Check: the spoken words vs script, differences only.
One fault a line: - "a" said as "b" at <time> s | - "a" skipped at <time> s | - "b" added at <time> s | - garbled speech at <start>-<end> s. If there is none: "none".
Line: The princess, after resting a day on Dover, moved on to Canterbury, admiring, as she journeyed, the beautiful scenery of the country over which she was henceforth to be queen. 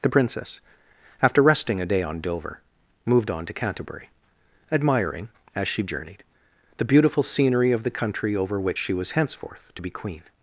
none